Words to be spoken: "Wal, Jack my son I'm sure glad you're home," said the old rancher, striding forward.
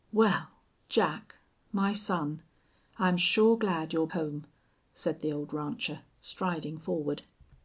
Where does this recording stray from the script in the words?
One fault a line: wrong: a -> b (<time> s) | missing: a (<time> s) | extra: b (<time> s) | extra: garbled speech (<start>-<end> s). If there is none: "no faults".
no faults